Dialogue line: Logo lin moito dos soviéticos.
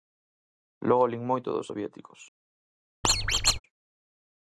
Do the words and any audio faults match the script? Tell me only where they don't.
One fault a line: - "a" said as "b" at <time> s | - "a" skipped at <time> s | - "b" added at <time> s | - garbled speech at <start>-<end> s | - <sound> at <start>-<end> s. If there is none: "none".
- squeak at 3.0-3.6 s